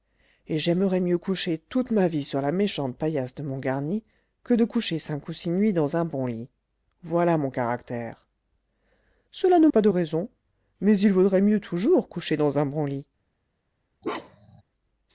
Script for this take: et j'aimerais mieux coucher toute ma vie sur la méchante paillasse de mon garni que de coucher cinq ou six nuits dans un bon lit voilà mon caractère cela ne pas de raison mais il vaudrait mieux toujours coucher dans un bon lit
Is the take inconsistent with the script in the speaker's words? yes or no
no